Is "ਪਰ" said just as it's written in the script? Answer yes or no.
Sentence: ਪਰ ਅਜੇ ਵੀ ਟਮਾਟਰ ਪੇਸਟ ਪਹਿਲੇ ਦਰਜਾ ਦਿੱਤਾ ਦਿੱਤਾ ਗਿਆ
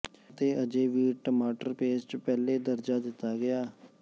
no